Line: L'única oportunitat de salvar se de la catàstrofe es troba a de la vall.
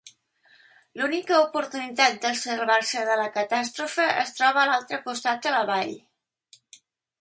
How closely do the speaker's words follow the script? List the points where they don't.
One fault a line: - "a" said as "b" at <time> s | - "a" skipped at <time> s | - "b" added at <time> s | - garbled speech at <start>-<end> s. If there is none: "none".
- "l'altre costat" added at 4.7 s